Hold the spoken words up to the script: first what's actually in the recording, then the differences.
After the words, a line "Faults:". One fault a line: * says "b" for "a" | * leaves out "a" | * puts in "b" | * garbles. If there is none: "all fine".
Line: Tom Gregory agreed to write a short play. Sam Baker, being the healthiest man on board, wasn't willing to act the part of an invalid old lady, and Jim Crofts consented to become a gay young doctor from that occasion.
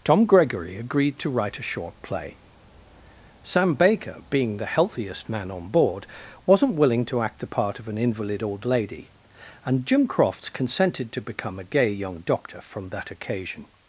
Tom Gregory agreed to write a short play. Sam Baker, being the healthiest man on board, wasn't willing to act the part of an invalid old lady, and Jim Crofts consented to become a gay young doctor from that occasion.
Faults:
all fine